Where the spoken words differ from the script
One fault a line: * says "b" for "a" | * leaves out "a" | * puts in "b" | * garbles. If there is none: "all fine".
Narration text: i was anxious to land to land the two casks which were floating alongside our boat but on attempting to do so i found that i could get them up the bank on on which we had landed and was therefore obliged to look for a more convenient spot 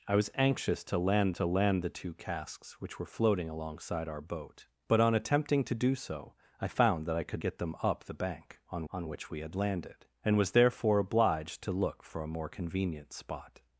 all fine